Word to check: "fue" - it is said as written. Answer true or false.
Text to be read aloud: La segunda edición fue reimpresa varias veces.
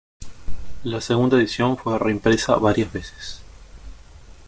true